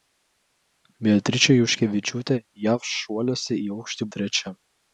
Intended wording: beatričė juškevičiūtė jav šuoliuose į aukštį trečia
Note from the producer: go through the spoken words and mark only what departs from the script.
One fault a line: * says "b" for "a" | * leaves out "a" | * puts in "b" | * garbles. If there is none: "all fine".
all fine